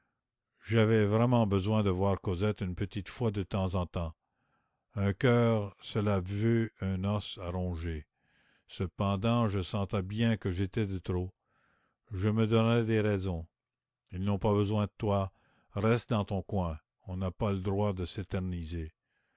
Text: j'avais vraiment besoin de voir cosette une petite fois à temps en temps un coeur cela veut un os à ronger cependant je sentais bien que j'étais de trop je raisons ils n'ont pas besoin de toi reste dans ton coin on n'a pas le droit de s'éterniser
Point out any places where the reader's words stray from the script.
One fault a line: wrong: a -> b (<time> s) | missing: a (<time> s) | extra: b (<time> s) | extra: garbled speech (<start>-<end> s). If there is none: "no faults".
wrong: à -> de (3.3 s)
extra: me donnais des (12.3 s)